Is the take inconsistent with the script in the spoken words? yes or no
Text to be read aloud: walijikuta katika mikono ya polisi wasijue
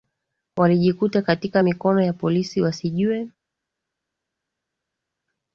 no